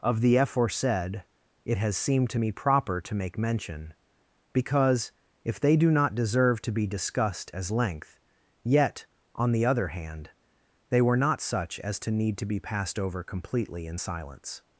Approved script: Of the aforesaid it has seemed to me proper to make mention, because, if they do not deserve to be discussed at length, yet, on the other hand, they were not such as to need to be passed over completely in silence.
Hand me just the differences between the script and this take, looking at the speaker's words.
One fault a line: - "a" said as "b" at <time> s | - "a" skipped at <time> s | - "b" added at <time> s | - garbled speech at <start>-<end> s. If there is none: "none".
- "at" said as "as" at 7.5 s